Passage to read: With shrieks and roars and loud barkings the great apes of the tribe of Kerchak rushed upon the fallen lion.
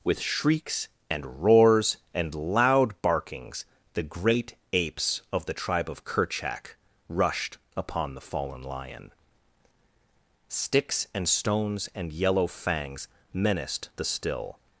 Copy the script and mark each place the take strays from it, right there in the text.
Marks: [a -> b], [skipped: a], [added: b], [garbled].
With shrieks and roars and loud barkings the great apes of the tribe of Kerchak rushed upon the fallen lion. [added: Sticks and stones and yellow fangs menaced the still]